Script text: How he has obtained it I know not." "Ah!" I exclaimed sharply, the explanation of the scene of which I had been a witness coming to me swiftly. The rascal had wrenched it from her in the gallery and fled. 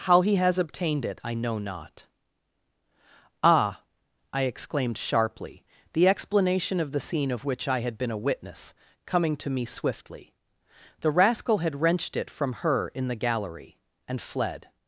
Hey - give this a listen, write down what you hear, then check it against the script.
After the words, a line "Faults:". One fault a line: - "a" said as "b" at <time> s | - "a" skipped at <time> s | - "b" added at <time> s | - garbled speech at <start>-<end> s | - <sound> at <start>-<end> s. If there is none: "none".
How he has obtained it I know not." "Ah!" I exclaimed sharply, the explanation of the scene of which I had been a witness coming to me swiftly. The rascal had wrenched it from her in the gallery and fled.
Faults:
none